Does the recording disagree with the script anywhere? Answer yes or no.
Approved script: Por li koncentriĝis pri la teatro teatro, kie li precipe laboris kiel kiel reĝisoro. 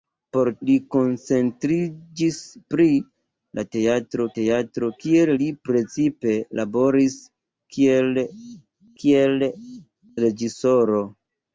no